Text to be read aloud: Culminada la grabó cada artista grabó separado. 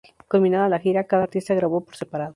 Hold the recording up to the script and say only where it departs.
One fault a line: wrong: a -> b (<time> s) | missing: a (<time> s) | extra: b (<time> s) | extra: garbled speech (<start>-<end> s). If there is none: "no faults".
wrong: grabó -> gira (0.8 s)
extra: por (1.8 s)